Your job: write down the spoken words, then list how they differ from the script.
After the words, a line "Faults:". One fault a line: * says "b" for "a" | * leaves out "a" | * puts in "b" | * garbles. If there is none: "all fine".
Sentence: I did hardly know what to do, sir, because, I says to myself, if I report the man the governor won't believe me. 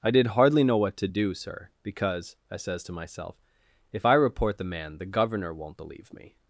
I did hardly know what to do, sir, because, I says to myself, if I report the man the governor won't believe me.
Faults:
all fine